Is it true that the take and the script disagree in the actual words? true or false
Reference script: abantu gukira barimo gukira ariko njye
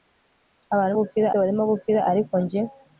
false